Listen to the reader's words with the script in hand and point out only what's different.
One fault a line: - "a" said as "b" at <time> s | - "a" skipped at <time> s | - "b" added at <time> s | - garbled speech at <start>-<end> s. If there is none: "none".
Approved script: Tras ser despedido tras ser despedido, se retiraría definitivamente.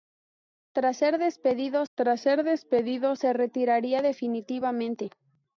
none